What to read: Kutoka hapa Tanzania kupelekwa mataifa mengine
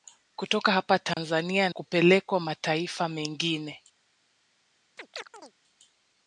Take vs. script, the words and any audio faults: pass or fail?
fail